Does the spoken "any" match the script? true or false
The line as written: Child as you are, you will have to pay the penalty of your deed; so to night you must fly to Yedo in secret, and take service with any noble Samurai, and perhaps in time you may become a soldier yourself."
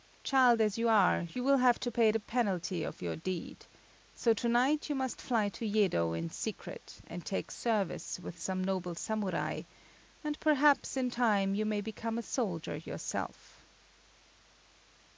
false